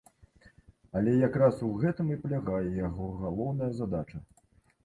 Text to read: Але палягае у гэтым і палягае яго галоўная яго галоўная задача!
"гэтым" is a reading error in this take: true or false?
false